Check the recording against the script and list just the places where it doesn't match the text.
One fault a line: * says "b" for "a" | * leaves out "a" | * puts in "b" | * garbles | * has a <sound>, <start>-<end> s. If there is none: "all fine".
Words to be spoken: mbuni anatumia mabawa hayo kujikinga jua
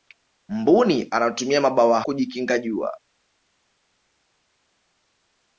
* leaves out "hayo"